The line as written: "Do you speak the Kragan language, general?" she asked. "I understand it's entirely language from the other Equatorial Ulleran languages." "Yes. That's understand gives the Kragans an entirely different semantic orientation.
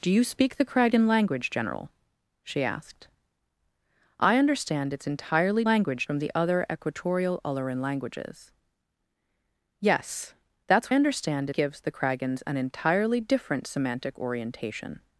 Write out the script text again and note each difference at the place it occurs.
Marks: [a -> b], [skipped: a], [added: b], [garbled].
"Do you speak the Kragan language, general?" she asked. "I understand it's entirely language from the other Equatorial Ulleran languages." "Yes. That's understand gives the Kragans an entirely different semantic orientation.